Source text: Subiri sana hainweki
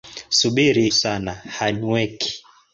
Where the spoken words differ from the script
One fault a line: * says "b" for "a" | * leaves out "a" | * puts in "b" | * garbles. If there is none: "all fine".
all fine